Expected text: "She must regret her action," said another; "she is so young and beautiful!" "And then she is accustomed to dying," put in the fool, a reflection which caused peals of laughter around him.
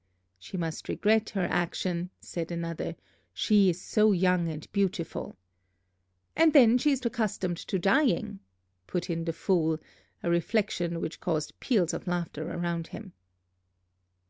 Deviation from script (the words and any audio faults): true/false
false